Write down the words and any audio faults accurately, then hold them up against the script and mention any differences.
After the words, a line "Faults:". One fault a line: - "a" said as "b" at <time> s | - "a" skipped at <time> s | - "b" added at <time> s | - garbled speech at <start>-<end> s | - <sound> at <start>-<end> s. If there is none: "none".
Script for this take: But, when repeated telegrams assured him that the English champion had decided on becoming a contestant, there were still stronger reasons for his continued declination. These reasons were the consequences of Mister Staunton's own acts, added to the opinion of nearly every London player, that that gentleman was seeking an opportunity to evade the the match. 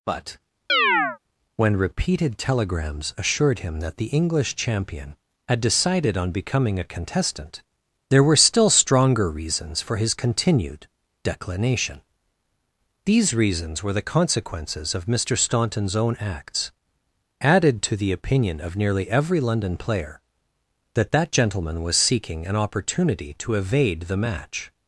But, when repeated telegrams assured him that the English champion had decided on becoming a contestant, there were still stronger reasons for his continued declination. These reasons were the consequences of Mister Staunton's own acts, added to the opinion of nearly every London player, that that gentleman was seeking an opportunity to evade the match.
Faults:
- chirp at 0.7-1.2 s
- "the" skipped at 24.2 s